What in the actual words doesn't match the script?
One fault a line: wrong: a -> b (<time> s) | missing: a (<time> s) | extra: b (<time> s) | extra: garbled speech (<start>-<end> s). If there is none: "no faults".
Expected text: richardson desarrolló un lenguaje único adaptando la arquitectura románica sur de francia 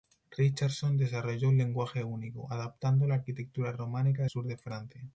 no faults